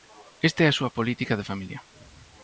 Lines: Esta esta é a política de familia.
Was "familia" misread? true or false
false